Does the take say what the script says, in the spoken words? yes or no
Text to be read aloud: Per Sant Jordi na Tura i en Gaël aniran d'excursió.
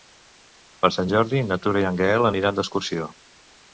yes